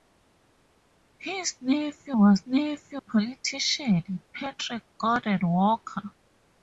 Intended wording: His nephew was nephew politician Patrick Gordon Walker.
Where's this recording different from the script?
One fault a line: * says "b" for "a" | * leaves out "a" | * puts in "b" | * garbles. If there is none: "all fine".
all fine